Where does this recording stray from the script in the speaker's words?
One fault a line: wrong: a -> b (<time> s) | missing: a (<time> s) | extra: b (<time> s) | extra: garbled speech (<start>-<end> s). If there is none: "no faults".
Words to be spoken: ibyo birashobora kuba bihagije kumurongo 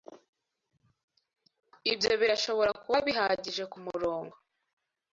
no faults